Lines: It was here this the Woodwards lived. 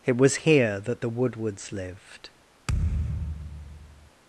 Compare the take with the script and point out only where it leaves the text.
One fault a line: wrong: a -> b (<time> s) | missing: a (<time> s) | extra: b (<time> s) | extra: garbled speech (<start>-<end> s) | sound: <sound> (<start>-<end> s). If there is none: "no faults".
wrong: this -> that (0.8 s)
sound: thud (2.7-4.1 s)